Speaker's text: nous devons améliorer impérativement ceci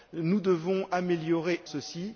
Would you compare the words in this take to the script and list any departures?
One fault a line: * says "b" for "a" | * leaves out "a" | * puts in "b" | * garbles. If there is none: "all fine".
* leaves out "impérativement"